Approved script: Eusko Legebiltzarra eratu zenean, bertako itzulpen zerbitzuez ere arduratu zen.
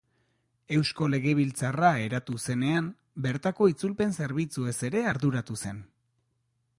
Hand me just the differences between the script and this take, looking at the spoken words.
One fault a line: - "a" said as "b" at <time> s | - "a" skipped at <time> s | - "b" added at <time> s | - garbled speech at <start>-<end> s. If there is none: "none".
none